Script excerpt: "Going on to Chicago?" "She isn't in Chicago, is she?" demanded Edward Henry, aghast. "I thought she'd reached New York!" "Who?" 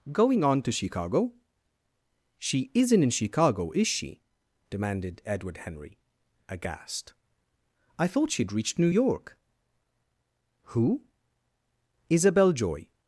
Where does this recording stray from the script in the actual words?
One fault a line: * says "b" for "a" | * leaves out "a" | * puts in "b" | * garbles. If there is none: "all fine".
* puts in "Isabel Joy"